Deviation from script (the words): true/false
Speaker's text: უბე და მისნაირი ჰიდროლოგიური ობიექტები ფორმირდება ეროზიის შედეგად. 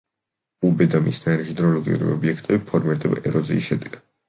false